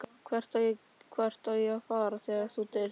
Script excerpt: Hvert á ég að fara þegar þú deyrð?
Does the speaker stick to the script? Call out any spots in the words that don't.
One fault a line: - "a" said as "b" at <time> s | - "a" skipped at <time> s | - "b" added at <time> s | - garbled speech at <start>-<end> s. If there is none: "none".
none